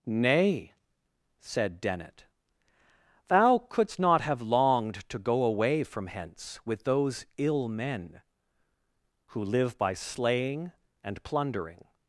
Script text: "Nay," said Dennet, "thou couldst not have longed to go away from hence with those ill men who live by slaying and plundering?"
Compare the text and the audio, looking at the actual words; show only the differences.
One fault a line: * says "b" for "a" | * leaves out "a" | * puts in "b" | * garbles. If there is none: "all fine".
all fine